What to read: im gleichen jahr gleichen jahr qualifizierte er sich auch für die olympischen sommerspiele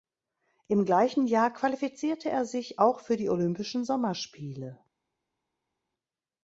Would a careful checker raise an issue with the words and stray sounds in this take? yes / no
yes